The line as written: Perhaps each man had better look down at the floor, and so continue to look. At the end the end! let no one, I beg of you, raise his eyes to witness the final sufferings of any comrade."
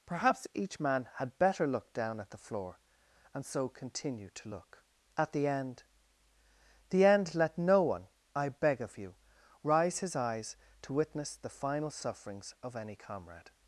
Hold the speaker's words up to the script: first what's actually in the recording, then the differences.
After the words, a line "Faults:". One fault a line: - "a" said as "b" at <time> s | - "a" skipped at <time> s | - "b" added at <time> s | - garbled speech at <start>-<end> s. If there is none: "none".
Perhaps each man had better look down at the floor, and so continue to look. At the end the end! let no one, I beg of you, rise his eyes to witness the final sufferings of any comrade."
Faults:
- "raise" said as "rise" at 9.6 s